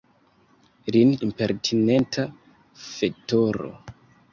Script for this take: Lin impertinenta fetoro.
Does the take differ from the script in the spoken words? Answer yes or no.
no